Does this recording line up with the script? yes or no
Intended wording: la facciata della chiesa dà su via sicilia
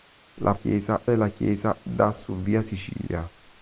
no